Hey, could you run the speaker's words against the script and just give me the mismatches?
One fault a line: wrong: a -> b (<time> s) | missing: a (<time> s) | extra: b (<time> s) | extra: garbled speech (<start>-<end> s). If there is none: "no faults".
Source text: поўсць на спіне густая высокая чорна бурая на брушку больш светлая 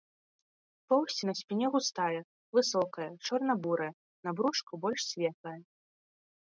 no faults